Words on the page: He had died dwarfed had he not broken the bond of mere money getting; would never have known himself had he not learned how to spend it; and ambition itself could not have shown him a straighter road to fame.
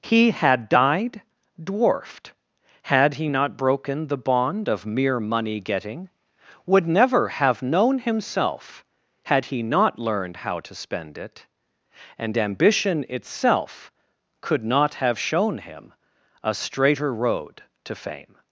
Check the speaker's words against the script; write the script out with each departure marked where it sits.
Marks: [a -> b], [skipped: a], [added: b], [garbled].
He had died dwarfed had he not broken the bond of mere money getting; would never have known himself had he not learned how to spend it; and ambition itself could not have shown him a straighter road to fame.